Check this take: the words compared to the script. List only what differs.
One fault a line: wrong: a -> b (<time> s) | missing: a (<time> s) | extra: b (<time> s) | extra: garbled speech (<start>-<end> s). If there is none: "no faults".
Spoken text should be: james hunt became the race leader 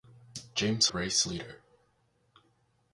missing: hunt became the (0.9 s)